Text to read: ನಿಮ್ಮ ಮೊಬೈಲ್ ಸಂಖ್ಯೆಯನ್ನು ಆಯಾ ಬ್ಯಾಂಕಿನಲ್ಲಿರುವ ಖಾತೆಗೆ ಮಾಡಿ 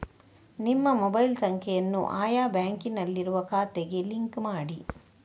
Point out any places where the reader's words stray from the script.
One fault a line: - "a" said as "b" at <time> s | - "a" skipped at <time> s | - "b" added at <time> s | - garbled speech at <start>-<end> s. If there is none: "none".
- "ಲಿಂಕ್" added at 4.0 s